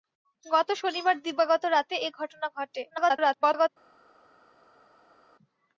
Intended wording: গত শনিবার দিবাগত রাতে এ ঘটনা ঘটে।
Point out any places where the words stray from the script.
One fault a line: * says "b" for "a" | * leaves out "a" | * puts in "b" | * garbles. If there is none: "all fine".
* garbles